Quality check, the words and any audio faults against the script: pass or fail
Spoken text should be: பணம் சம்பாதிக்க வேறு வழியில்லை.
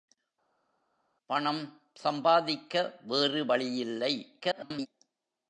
fail